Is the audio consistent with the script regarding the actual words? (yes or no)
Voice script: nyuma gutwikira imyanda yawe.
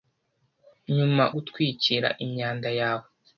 yes